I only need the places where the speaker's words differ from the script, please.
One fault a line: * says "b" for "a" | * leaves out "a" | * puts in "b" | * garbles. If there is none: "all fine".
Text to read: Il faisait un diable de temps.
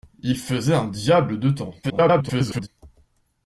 * garbles